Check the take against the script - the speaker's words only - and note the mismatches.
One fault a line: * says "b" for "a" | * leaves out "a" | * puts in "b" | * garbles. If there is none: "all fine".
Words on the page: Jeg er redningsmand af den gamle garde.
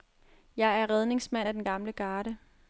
all fine